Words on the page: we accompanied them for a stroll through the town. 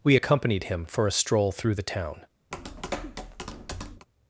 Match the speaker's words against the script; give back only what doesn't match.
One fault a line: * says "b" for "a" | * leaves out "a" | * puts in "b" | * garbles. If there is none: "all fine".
* says "him" for "them"